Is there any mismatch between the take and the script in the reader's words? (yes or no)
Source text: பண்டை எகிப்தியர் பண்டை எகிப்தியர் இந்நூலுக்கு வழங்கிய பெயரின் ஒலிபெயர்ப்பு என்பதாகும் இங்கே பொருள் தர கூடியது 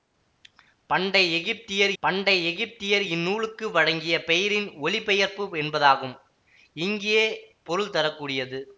no